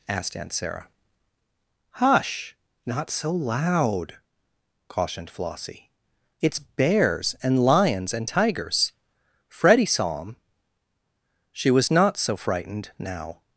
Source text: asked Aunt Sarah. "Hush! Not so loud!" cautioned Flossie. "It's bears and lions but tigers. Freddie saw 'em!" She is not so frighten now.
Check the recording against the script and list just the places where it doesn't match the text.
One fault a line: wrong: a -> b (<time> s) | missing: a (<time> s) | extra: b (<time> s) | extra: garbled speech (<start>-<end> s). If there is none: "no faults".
wrong: but -> and (8.1 s)
wrong: is -> was (11.7 s)
wrong: frighten -> frightened (12.3 s)